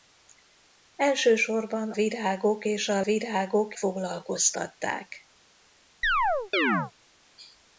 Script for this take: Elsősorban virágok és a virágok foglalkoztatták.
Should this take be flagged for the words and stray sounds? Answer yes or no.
yes